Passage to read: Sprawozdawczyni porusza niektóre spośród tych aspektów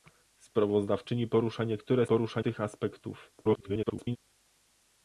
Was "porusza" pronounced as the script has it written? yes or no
yes